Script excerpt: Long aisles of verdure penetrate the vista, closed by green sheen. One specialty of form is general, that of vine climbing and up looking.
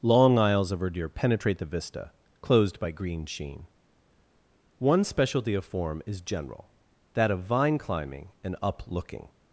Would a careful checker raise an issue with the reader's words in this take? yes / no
no